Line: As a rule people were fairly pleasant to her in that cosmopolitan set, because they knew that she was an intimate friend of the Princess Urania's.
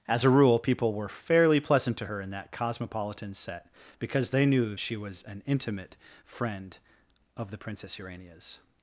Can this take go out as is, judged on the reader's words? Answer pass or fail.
fail